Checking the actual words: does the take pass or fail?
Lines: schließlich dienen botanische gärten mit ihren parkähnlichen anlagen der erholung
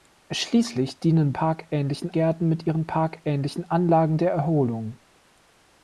fail